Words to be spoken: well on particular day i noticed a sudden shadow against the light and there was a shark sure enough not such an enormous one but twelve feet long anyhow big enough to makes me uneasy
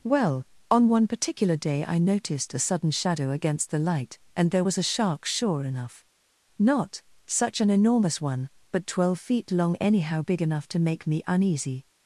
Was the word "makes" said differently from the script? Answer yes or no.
yes